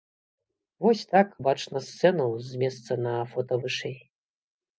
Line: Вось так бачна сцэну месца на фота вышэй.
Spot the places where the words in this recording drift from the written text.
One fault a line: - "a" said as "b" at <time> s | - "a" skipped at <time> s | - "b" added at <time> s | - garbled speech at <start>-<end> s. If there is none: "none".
- "з" added at 2.5 s